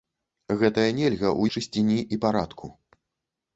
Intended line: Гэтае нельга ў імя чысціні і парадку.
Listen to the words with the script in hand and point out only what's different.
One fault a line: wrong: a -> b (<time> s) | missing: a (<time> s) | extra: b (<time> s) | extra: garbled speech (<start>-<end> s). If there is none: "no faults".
missing: імя (1.4 s)